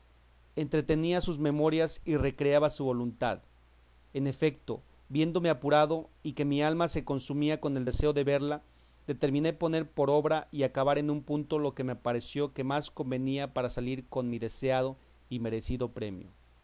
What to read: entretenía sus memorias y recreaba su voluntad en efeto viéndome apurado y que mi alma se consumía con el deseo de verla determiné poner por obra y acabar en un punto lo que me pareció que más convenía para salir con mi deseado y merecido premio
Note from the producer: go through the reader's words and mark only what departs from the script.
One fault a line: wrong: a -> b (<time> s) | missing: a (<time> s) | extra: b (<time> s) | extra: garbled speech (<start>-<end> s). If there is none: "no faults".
no faults